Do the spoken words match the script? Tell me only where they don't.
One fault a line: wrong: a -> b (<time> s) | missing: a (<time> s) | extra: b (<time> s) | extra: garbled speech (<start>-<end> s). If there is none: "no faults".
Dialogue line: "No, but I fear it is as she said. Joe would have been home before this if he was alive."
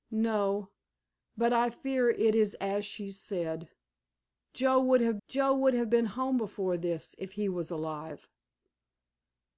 extra: joe would have (5.3 s)